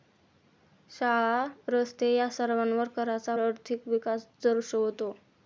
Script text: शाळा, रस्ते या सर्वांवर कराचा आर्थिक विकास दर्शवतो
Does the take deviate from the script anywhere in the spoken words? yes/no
no